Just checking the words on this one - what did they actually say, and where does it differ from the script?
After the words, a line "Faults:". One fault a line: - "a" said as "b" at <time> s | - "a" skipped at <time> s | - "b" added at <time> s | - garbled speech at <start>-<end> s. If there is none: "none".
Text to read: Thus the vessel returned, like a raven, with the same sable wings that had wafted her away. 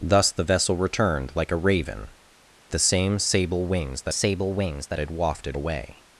Thus the vessel returned, like a raven, the same sable wings that sable wings that had wafted away.
Faults:
- "with" skipped at 2.1 s
- "sable wings that" added at 4.1 s
- "her" skipped at 5.6 s